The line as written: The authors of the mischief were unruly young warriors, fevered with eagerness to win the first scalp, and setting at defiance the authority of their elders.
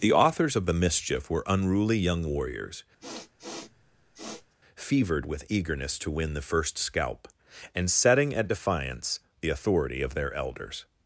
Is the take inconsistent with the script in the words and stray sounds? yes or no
yes